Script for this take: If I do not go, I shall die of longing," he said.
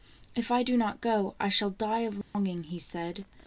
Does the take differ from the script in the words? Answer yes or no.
no